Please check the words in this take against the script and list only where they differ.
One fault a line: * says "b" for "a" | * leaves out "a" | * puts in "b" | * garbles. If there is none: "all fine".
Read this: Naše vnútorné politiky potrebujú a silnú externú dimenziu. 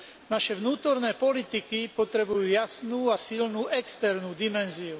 * puts in "jasnú"